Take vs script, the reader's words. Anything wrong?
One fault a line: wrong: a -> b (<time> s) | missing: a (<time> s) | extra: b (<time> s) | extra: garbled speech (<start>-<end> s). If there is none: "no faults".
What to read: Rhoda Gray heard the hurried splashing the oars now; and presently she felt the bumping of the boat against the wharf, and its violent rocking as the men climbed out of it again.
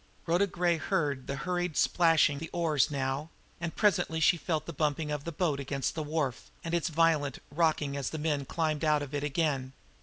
no faults